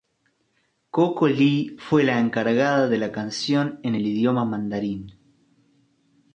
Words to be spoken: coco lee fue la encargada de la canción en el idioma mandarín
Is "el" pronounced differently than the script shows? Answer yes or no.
no